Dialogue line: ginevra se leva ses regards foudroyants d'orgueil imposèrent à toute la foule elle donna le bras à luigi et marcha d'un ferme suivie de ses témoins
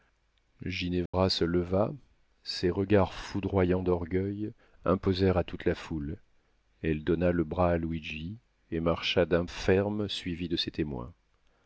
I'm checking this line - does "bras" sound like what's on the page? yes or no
yes